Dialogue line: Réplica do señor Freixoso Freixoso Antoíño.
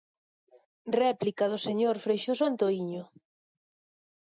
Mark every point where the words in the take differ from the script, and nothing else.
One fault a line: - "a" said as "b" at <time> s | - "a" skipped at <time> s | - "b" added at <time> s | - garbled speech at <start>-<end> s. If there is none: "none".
- "Freixoso" skipped at 2.4 s